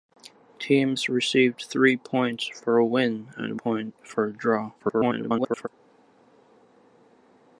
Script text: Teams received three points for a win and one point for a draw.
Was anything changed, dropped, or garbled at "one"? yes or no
yes